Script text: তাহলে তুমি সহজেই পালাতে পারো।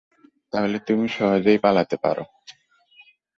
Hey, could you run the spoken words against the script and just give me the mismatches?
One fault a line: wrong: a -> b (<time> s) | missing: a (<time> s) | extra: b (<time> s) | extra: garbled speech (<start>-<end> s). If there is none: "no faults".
no faults